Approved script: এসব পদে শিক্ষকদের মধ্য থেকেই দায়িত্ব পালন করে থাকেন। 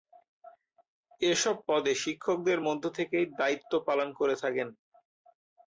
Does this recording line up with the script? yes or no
yes